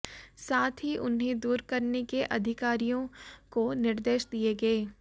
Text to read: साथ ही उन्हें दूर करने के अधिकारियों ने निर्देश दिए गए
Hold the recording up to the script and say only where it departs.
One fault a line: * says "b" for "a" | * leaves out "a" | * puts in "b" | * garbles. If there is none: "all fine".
* says "को" for "ने"